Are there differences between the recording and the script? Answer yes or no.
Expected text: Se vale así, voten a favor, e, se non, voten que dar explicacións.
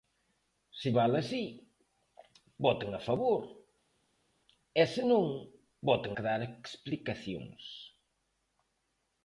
no